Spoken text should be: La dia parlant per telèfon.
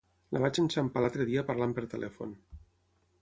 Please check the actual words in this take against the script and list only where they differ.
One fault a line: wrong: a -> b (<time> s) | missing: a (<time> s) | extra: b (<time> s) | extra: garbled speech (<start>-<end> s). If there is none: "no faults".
extra: vaig enxampar l'altre (0.4 s)